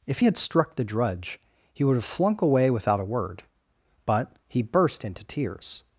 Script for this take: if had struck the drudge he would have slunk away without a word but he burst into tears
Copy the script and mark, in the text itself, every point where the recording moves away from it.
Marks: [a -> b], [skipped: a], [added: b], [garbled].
if had struck the drudge he would have slunk away without a word but he burst into tears